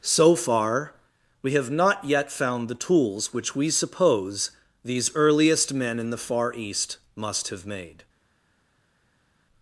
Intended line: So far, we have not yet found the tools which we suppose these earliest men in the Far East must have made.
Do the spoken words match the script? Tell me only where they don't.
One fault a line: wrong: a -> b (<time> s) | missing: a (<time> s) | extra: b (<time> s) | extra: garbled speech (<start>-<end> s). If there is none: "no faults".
no faults